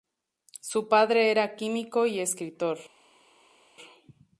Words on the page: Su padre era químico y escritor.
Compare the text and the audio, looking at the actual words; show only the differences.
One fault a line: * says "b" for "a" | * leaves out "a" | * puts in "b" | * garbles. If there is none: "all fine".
all fine